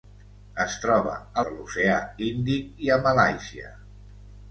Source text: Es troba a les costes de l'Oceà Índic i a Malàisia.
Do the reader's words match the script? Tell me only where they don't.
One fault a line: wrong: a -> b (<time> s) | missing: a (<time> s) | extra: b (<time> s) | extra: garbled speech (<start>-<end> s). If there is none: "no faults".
missing: les costes (1.4 s)